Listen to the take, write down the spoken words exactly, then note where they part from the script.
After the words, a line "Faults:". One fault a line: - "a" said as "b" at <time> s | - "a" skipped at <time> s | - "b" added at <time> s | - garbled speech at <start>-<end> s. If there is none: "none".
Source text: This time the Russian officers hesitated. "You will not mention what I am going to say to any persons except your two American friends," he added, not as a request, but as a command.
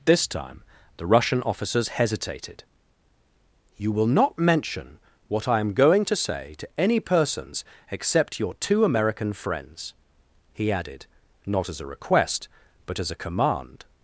This time the Russian officers hesitated. "You will not mention what I am going to say to any persons except your two American friends," he added, not as a request, but as a command.
Faults:
none